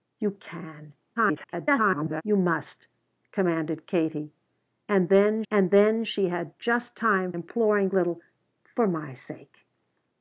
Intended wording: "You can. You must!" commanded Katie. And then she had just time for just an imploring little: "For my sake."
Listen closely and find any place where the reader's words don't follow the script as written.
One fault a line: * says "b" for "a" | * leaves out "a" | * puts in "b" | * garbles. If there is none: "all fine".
* garbles
* puts in "and then"
* leaves out "for just an"